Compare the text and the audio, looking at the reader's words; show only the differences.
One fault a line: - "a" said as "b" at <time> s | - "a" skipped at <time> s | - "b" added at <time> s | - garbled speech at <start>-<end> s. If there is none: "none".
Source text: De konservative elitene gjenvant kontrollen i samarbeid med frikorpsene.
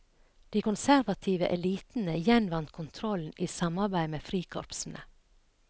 none